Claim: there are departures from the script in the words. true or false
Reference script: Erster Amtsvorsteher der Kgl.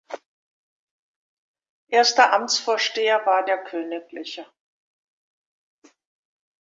true